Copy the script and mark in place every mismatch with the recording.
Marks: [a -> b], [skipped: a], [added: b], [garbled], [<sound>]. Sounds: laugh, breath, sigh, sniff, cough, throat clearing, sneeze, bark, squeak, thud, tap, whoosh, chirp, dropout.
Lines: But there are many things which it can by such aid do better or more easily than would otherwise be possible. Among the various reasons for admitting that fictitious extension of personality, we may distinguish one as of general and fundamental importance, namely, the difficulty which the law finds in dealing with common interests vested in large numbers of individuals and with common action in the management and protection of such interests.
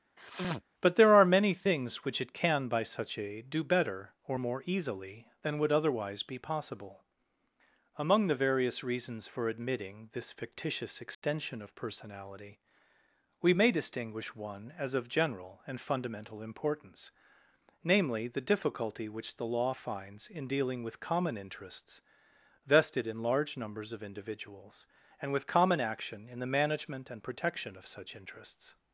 [sniff] But there are many things which it can by such aid do better or more easily than would otherwise be possible. Among the various reasons for admitting [that -> this] fictitious extension [dropout] of personality, we may distinguish one as of general and fundamental importance, namely, the difficulty which the law finds in dealing with common interests vested in large numbers of individuals and with common action in the management and protection of such interests.